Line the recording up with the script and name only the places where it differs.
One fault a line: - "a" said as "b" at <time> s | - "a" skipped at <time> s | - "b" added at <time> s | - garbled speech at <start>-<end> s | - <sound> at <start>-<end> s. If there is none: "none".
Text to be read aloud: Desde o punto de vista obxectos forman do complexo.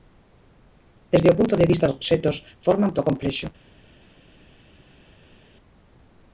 none